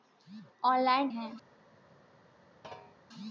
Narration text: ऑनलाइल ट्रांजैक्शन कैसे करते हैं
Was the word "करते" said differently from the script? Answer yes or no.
yes